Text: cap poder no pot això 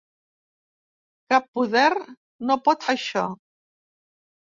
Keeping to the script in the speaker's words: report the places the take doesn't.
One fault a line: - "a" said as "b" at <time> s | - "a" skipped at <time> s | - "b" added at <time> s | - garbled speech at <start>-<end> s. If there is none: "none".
none